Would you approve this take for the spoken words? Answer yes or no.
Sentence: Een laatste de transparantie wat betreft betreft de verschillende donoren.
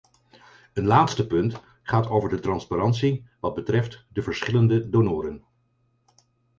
no